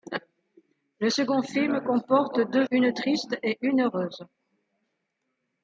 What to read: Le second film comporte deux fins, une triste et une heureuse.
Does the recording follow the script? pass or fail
fail